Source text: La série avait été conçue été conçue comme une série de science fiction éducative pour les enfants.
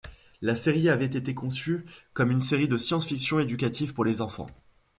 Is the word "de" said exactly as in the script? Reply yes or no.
yes